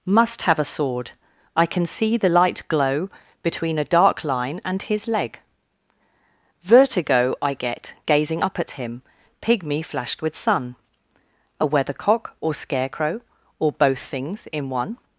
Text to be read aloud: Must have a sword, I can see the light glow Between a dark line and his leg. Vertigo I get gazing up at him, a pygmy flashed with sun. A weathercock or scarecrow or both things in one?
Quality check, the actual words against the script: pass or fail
fail